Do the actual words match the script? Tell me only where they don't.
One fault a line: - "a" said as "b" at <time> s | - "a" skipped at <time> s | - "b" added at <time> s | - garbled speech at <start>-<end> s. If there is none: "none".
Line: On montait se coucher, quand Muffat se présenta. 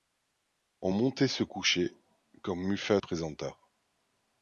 - "se" skipped at 3.0 s